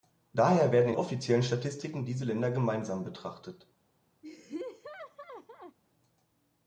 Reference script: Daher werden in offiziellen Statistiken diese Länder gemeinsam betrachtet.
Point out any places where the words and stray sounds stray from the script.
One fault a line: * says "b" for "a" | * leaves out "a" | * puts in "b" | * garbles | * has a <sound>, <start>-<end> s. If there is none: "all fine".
* has a laugh, 4.2-5.8 s